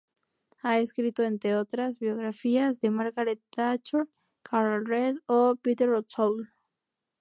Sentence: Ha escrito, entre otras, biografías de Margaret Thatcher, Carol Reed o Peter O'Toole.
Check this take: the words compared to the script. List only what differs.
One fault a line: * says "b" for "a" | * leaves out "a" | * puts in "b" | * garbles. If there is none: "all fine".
all fine